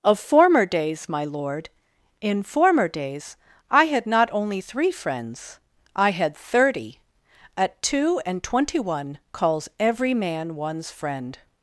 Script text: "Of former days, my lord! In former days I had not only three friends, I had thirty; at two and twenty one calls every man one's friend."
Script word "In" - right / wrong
right